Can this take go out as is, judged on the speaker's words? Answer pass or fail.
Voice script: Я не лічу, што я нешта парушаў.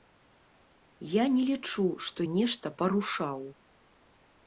fail